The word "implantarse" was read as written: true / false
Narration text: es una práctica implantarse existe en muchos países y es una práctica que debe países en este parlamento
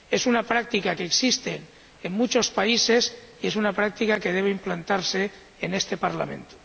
false